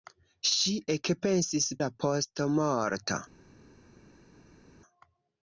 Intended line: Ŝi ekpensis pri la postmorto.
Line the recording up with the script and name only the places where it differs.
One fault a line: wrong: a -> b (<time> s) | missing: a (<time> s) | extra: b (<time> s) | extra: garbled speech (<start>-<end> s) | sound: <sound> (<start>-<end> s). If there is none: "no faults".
missing: pri (1.7 s)